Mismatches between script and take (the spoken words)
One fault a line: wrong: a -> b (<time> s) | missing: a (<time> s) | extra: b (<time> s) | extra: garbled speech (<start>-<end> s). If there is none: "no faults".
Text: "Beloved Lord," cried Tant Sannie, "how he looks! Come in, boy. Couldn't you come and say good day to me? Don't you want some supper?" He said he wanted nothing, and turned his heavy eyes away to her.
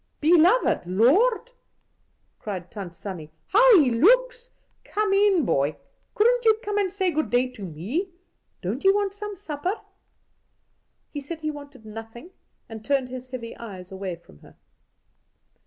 wrong: to -> from (14.2 s)